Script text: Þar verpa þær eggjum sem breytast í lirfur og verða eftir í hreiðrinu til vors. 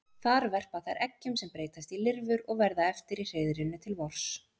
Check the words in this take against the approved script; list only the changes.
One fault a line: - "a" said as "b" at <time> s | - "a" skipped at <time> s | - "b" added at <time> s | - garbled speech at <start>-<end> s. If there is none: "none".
none